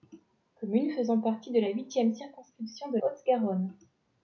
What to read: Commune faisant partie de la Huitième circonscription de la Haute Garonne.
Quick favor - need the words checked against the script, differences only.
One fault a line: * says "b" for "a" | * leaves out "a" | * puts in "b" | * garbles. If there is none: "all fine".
* leaves out "la"